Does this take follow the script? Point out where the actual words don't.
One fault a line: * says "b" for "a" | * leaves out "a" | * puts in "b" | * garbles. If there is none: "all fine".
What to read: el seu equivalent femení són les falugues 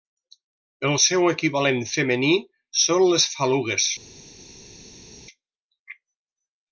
all fine